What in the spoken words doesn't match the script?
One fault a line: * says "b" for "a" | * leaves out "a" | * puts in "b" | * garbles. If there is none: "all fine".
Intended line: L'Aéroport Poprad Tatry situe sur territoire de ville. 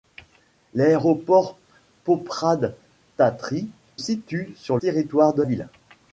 all fine